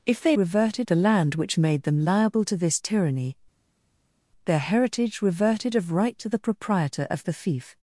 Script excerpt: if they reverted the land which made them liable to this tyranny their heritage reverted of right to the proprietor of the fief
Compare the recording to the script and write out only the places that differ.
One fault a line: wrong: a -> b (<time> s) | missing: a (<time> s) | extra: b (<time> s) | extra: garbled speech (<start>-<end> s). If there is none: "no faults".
no faults